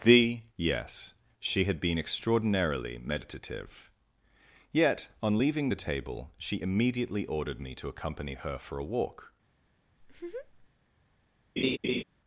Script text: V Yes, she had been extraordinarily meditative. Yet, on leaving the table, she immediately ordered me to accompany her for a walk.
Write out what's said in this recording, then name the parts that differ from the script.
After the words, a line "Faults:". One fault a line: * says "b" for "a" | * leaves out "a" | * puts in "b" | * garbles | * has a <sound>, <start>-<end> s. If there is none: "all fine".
The Yes, she had been extraordinarily meditative. Yet, on leaving the table, she immediately ordered me to accompany her for a walk.
Faults:
* says "The" for "V"
* has a laugh, 10.0-10.7 s
* has a laugh, 11.6-12.0 s